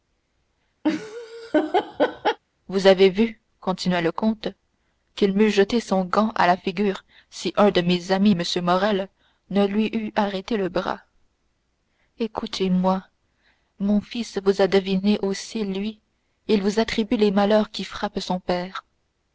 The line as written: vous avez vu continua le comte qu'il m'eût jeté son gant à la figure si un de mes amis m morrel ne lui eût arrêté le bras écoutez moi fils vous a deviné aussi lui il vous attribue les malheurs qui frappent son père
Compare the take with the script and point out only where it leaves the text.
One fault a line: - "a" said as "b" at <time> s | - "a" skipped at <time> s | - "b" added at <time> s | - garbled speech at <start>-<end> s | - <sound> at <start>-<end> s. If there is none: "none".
- laugh at 0.8-2.4 s
- "mon" added at 13.8 s